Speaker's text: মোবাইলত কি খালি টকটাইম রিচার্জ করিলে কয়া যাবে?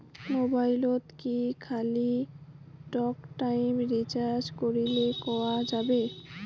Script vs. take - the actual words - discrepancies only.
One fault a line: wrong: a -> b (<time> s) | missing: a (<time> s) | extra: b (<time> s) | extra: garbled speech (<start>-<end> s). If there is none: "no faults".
no faults